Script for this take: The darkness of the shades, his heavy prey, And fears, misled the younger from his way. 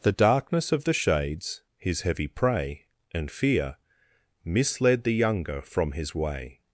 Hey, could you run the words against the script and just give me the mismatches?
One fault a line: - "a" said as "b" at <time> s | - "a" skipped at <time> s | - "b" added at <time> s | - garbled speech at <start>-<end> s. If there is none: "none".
- "fears" said as "fear" at 3.3 s